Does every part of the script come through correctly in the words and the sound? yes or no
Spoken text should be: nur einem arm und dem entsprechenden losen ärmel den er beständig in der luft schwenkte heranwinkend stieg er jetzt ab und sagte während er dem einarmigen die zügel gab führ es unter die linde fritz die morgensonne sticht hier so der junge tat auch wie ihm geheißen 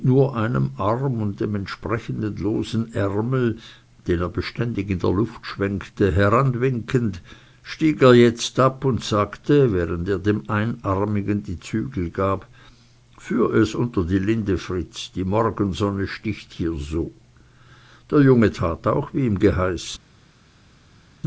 yes